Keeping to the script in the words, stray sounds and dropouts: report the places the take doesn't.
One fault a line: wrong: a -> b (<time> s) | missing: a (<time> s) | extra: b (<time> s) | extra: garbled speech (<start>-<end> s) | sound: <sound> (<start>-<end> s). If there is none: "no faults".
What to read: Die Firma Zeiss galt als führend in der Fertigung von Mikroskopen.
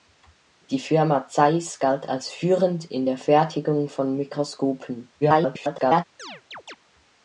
extra: garbled speech (5.2-6.0 s)
sound: chirp (6.2-6.8 s)